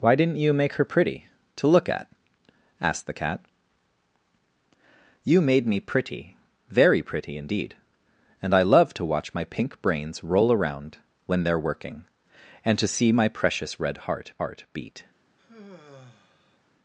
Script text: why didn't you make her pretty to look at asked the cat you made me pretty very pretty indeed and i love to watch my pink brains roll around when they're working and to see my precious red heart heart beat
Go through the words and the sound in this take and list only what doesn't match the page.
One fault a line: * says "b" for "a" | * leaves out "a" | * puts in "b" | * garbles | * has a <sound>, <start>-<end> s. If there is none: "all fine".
* has a sigh, 15.4-16.6 s